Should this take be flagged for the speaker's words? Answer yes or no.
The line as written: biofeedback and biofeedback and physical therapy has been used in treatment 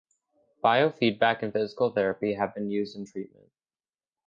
yes